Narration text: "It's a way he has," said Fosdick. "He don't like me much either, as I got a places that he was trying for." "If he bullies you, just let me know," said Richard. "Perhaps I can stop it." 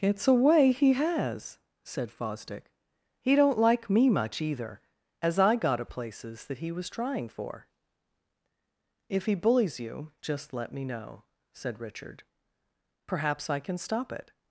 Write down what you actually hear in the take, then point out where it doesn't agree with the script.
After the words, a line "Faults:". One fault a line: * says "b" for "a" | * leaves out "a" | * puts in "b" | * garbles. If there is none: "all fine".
"It's a way he has," said Fosdick. "He don't like me much either, as I got a places that he was trying for." "If he bullies you, just let me know," said Richard. "Perhaps I can stop it."
Faults:
all fine